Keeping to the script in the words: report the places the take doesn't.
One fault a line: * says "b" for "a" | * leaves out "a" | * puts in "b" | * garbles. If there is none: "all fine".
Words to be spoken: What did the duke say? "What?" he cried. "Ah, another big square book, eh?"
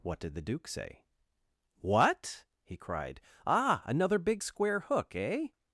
* says "hook" for "book"